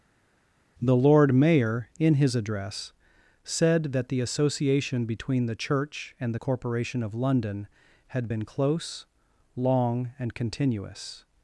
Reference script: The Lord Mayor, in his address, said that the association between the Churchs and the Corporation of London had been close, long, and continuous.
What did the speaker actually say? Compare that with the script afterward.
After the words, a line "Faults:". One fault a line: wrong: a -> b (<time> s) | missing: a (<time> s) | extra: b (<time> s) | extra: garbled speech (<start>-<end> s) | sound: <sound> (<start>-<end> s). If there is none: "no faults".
The Lord Mayor, in his address, said that the association between the Church and the Corporation of London had been close, long, and continuous.
Faults:
wrong: Churchs -> Church (5.6 s)